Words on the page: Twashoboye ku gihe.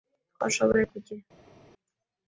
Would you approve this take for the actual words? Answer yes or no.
yes